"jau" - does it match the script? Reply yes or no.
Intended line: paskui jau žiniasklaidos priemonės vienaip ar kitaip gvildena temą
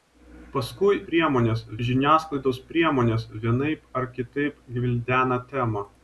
no